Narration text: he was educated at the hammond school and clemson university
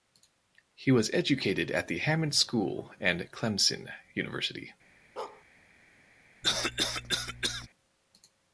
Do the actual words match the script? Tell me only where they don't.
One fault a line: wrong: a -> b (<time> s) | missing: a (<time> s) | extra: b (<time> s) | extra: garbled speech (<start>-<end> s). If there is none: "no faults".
no faults